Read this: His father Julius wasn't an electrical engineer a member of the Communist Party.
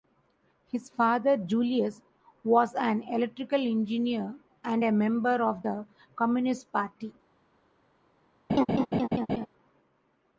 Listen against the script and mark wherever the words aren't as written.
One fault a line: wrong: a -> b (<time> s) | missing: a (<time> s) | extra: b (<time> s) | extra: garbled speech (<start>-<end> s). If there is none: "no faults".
wrong: wasn't -> was (2.4 s)
extra: and (4.6 s)